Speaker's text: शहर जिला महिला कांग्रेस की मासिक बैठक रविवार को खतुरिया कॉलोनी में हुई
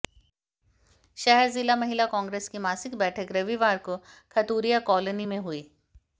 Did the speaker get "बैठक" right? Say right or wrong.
right